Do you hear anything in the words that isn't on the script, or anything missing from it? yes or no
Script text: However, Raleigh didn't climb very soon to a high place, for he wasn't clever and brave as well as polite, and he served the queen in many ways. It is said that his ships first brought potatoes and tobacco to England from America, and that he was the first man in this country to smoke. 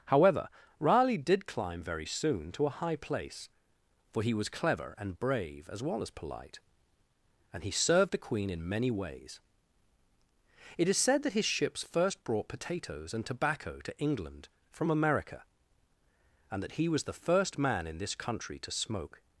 yes